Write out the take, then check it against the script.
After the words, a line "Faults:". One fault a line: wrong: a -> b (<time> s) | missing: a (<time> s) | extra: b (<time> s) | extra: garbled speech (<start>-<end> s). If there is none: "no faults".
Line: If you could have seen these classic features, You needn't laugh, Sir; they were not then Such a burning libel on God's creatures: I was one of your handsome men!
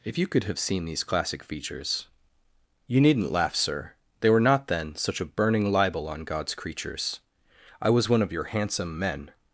If you could have seen these classic features, You needn't laugh, Sir; they were not then Such a burning libel on God's creatures: I was one of your handsome men!
Faults:
no faults